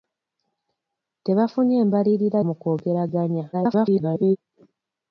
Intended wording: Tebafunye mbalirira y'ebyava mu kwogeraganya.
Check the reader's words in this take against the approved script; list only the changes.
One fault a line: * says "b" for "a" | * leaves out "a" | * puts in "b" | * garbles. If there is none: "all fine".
* leaves out "y'ebyava"
* garbles